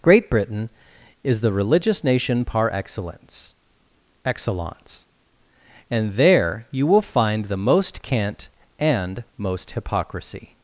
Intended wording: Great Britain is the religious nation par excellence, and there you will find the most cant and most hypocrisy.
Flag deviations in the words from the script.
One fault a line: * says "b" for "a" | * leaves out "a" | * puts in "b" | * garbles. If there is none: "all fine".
* puts in "excellence"